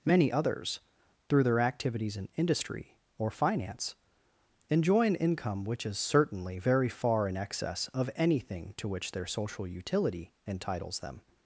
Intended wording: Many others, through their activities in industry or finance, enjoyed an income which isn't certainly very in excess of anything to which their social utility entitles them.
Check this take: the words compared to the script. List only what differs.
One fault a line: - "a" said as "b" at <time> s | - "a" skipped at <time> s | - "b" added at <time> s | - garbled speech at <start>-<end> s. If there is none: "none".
- "enjoyed" said as "enjoy" at 4.7 s
- "isn't" said as "is" at 5.8 s
- "far" added at 6.9 s